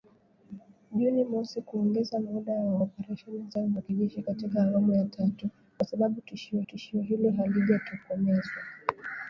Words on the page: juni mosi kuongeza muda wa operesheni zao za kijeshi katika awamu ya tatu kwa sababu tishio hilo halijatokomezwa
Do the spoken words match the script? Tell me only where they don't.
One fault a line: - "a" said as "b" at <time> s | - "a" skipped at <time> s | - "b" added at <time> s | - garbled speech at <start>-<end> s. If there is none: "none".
- "tishio" added at 6.6 s